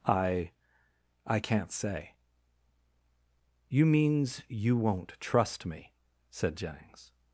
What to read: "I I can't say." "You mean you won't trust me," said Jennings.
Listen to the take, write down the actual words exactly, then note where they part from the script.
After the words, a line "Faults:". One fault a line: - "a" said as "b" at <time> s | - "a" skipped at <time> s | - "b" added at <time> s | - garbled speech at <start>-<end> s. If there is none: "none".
"I I can't say." "You means you won't trust me," said Jennings.
Faults:
- "mean" said as "means" at 3.9 s